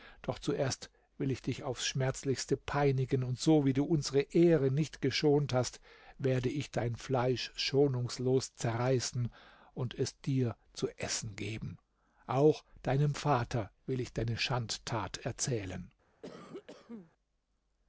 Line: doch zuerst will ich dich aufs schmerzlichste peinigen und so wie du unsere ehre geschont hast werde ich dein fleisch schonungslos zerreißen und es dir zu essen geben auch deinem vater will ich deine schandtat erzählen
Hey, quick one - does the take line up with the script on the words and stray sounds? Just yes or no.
no